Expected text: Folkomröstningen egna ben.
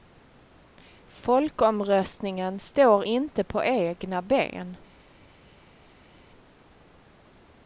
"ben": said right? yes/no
yes